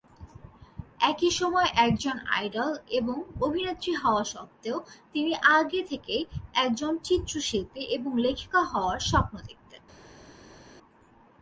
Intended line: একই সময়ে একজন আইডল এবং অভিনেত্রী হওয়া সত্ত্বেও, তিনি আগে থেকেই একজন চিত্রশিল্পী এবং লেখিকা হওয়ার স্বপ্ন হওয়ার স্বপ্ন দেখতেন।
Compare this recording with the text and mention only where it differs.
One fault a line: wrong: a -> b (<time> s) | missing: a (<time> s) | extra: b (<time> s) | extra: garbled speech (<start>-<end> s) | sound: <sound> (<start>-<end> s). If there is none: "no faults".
missing: হওয়ার স্বপ্ন (9.3 s)